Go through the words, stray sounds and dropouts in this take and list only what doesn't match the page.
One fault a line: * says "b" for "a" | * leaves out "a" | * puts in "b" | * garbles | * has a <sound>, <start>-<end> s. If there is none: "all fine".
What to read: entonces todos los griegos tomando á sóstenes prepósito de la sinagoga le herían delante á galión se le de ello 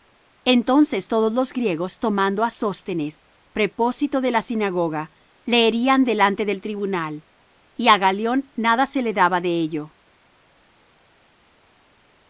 * puts in "del tribunal y"
* puts in "nada"
* puts in "daba"